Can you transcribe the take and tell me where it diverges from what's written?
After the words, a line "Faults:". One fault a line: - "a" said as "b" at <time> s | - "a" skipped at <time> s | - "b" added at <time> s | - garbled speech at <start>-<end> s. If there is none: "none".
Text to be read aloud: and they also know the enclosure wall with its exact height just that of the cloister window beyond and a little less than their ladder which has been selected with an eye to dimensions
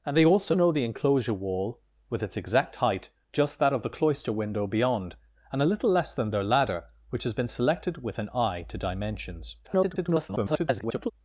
and they also know the enclosure wall with its exact height just that of the cloister window beyond and a little less than their ladder which has been selected with an eye to dimensions [garbled]
Faults:
- garbled speech at 9.6-11.1 s